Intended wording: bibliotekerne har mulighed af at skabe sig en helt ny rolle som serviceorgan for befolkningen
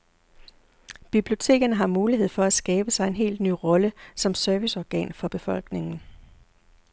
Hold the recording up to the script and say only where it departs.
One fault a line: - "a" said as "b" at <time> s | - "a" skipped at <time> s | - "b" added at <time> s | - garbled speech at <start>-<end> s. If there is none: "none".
- "af" said as "for" at 2.3 s